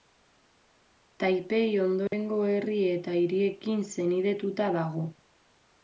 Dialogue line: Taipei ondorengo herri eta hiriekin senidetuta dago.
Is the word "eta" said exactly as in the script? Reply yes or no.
yes